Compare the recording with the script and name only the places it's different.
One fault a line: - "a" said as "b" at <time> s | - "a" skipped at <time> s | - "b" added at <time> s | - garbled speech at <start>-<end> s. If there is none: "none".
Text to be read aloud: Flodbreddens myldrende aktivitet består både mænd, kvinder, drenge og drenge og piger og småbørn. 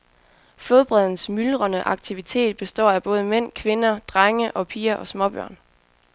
- "af" added at 2.9 s
- "drenge og" skipped at 4.7 s